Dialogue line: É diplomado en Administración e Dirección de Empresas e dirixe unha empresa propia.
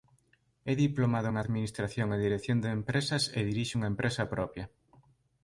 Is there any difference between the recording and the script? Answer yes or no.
no